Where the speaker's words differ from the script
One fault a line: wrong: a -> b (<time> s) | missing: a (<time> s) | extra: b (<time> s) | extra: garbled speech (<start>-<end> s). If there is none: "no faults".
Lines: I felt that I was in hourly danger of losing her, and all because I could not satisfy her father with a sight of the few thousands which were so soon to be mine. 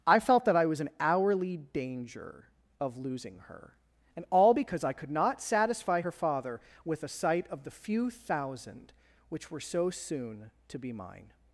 wrong: thousands -> thousand (8.1 s)